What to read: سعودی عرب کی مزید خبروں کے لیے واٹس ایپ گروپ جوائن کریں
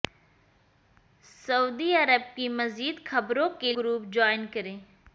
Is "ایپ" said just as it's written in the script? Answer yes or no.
no